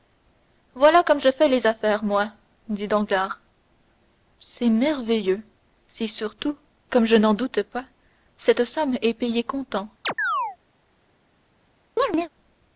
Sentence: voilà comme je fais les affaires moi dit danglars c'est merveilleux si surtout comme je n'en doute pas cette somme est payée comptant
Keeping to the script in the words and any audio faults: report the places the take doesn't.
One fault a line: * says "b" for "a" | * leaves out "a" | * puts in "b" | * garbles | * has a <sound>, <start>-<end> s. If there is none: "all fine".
* has a chirp, 10.0-10.6 s
* has a chirp, 12.0-12.3 s